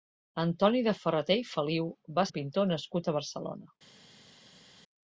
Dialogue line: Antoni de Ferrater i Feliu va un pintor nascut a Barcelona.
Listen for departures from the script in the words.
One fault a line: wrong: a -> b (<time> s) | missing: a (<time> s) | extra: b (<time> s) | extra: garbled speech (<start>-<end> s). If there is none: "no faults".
no faults